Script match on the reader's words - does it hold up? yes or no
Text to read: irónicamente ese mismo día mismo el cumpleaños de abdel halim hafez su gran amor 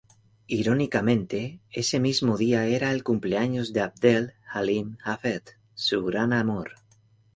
no